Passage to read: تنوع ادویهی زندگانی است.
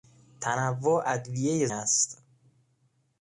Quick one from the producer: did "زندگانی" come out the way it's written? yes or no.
no